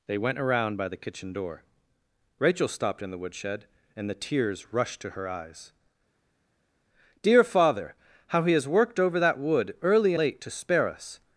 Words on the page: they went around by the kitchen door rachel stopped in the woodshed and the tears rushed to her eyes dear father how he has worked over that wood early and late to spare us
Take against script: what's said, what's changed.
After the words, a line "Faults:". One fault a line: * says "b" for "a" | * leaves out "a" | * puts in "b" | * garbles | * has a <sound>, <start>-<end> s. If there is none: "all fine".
they went around by the kitchen door rachel stopped in the woodshed and the tears rushed to her eyes dear father how he has worked over that wood early late to spare us
Faults:
* leaves out "and"